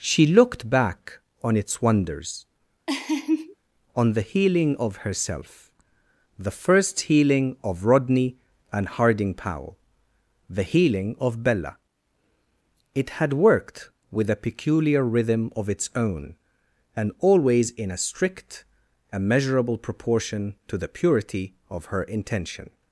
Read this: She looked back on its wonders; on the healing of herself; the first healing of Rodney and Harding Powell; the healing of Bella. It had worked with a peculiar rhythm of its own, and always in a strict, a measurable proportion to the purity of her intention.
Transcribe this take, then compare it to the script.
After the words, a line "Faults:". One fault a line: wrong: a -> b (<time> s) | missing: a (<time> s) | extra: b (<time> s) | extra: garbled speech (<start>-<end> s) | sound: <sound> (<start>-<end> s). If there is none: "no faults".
She looked back on its wonders; on the healing of herself; the first healing of Rodney and Harding Powell; the healing of Bella. It had worked with a peculiar rhythm of its own, and always in a strict, a measurable proportion to the purity of her intention.
Faults:
sound: laugh (2.9-3.6 s)